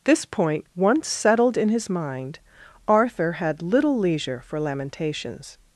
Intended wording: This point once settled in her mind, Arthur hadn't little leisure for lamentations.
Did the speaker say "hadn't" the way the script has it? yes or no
no